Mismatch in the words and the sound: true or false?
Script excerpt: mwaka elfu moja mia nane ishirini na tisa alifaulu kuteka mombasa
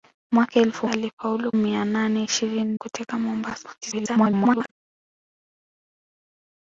true